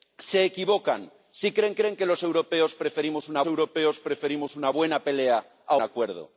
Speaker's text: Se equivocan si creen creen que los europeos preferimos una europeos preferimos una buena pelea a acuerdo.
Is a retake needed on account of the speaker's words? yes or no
no